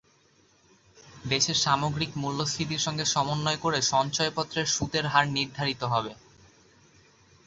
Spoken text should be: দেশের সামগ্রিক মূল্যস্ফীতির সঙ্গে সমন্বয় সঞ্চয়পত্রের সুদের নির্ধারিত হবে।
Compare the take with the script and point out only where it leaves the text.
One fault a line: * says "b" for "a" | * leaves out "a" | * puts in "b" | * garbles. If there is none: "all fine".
* puts in "করে"
* puts in "হার"